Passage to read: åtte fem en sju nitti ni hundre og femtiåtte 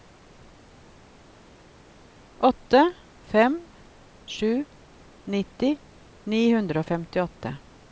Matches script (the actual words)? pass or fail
fail